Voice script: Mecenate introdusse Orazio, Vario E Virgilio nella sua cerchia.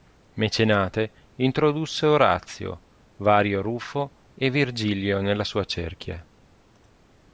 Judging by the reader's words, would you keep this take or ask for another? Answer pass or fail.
fail